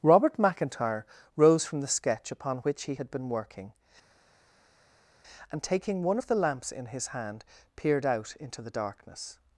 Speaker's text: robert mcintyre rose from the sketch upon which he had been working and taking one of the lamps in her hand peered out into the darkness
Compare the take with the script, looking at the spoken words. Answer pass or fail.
fail